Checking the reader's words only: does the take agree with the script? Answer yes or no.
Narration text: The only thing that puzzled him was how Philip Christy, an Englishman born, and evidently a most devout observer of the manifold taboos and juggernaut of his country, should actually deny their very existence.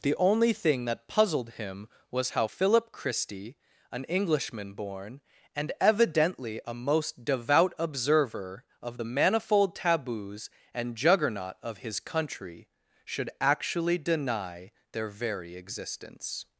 yes